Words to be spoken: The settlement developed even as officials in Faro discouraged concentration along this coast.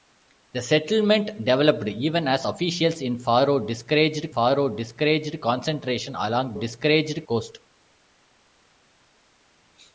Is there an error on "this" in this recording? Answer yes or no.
yes